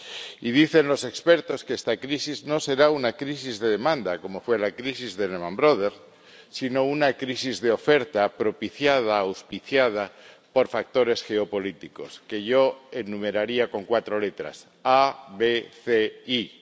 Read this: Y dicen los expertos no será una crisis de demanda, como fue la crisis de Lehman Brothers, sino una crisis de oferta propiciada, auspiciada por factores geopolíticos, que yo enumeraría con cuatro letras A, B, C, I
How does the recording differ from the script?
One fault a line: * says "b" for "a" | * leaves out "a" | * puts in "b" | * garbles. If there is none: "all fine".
* puts in "que esta crisis"